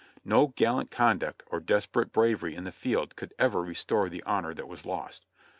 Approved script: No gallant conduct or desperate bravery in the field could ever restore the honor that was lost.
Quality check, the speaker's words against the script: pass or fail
pass